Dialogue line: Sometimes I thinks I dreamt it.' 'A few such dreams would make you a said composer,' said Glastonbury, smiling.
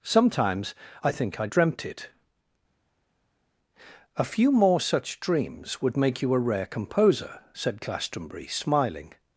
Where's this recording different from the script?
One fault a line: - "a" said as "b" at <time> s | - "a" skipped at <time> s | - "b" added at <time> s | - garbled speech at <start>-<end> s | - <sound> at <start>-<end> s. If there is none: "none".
- "thinks" said as "think" at 1.1 s
- "more" added at 4.5 s
- "said" said as "rare" at 6.4 s